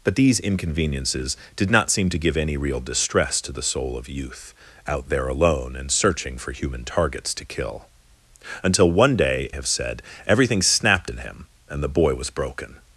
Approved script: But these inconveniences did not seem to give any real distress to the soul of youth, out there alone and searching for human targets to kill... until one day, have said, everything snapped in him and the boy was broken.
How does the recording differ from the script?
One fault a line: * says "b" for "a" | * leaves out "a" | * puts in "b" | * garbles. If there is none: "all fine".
all fine